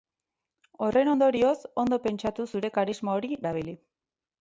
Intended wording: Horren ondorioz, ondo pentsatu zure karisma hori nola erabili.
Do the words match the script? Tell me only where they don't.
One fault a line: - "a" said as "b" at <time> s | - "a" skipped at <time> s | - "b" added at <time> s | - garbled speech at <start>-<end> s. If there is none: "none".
- "nola" skipped at 3.4 s